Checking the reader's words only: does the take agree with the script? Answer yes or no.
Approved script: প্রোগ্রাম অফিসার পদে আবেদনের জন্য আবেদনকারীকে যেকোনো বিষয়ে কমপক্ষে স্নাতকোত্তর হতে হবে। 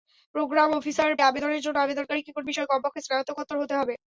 no